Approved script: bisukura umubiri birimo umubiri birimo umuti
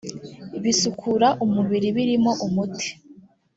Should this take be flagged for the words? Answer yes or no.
yes